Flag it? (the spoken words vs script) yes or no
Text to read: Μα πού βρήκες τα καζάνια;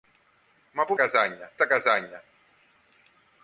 yes